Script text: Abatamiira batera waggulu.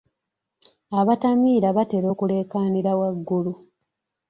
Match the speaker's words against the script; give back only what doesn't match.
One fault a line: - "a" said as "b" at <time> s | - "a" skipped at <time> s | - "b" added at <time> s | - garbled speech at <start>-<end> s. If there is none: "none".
- "okuleekaanira" added at 2.1 s